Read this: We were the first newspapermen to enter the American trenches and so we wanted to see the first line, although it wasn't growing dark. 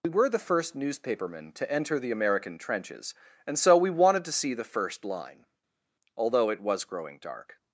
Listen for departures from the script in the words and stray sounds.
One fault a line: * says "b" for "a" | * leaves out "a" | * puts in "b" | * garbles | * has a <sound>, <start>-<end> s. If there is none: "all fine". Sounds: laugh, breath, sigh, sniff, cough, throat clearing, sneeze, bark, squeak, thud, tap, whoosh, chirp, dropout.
* says "was" for "wasn't"